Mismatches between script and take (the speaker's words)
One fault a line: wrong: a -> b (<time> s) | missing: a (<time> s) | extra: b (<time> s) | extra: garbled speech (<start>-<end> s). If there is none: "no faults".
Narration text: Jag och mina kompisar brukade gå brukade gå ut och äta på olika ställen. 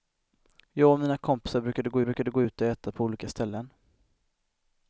no faults